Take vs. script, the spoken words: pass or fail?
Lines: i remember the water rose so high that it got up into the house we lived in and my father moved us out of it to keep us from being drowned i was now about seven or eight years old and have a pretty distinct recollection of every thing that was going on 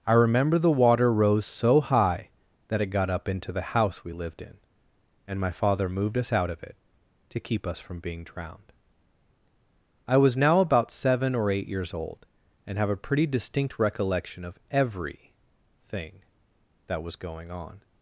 pass